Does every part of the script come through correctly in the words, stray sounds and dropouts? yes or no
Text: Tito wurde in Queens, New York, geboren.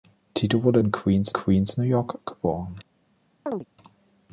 no